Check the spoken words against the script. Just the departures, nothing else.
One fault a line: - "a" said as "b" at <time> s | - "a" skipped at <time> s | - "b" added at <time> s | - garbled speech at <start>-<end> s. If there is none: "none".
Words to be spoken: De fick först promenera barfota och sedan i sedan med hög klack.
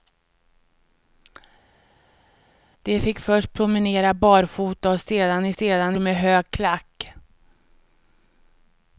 none